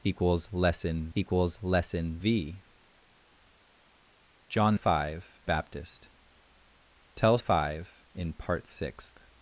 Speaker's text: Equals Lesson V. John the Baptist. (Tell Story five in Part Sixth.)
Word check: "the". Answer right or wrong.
wrong